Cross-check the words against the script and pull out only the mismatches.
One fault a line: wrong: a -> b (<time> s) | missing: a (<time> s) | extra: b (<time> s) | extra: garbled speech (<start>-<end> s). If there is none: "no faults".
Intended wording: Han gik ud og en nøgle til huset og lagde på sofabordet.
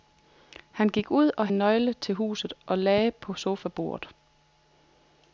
no faults